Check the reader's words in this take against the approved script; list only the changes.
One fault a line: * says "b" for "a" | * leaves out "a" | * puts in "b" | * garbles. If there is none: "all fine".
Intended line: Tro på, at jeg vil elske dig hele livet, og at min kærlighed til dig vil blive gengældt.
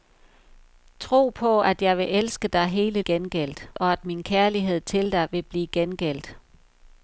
* says "gengældt" for "livet"